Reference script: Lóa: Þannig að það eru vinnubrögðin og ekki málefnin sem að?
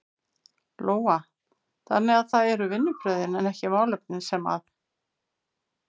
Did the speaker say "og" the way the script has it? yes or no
no